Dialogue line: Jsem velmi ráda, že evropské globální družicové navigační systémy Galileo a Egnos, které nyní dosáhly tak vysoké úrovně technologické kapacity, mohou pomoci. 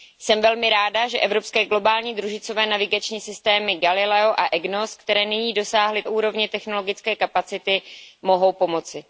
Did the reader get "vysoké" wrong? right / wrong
wrong